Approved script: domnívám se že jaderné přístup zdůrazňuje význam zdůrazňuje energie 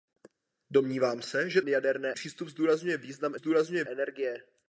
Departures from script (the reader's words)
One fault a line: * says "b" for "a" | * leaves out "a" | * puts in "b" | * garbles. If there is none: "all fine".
all fine